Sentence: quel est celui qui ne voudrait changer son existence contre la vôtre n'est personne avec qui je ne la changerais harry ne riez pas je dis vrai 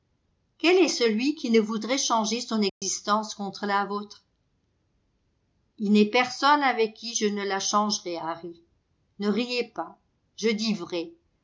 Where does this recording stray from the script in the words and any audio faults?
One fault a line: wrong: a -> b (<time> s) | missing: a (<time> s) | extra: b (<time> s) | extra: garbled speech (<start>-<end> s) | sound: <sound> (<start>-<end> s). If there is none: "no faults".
sound: dropout (2.7-2.8 s)
extra: il (5.8 s)